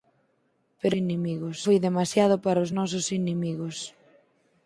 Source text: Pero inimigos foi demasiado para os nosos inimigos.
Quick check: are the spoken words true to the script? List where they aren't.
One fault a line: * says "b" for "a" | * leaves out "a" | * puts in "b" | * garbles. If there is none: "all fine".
all fine